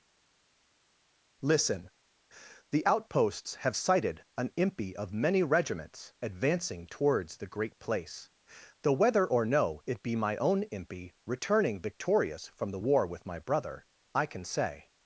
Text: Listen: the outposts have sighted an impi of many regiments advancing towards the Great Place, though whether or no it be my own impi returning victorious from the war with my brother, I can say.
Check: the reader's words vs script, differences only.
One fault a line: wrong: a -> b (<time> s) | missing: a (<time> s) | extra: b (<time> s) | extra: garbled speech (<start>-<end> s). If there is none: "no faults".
no faults